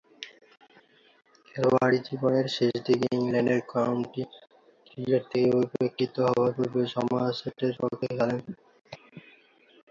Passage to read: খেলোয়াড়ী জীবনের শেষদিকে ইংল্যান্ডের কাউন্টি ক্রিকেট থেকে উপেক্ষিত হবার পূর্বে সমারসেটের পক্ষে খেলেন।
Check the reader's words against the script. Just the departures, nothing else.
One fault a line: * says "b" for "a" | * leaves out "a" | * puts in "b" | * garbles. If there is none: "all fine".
all fine